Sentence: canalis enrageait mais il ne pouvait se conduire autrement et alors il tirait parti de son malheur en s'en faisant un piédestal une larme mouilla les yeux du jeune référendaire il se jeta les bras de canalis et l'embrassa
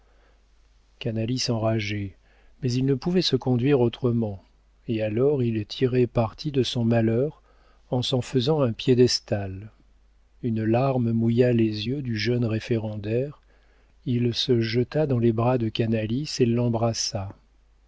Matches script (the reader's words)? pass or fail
fail